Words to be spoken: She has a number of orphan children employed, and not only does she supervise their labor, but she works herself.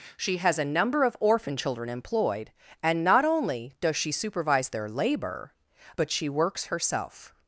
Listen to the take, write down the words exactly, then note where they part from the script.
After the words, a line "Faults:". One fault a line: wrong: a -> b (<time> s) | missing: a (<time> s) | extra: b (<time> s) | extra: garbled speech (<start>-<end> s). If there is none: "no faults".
She has a number of orphan children employed, and not only does she supervise their labor, but she works herself.
Faults:
no faults